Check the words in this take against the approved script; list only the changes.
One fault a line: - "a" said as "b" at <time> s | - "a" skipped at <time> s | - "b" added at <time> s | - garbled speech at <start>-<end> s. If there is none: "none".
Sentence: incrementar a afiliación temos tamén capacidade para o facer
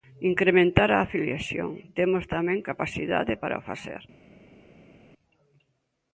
none